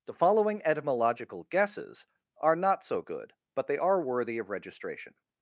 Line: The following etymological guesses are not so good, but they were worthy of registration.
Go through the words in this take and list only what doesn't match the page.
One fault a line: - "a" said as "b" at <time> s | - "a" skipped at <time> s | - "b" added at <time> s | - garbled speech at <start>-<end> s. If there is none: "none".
- "were" said as "are" at 3.8 s